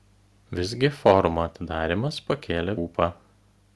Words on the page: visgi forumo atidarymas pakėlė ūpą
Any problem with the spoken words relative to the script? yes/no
no